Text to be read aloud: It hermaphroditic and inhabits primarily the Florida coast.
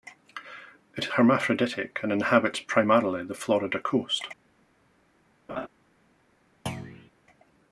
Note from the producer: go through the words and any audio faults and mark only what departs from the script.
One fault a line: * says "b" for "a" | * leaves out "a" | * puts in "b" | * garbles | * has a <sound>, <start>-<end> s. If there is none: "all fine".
* has a laugh, 5.5-5.7 s
* has a thud, 6.7-7.1 s